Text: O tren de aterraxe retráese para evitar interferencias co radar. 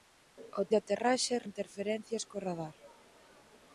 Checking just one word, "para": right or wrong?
wrong